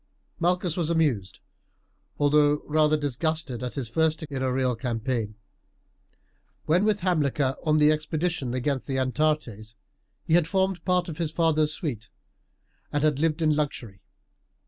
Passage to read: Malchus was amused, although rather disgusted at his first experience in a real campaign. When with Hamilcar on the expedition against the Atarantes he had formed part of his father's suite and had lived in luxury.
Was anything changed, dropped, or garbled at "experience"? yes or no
yes